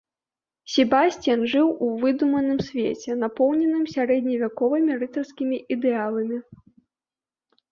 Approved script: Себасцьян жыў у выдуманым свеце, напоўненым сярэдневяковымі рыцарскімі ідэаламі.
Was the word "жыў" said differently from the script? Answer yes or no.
no